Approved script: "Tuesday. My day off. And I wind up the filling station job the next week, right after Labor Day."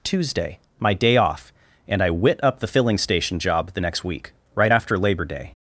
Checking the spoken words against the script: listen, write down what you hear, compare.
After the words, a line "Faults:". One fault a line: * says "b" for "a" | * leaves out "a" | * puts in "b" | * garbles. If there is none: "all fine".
"Tuesday. My day off. And I wit up the filling station job the next week, right after Labor Day."
Faults:
* says "wit" for "wind"